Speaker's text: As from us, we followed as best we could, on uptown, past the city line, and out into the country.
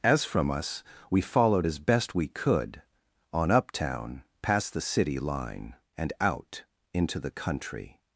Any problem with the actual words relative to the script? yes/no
no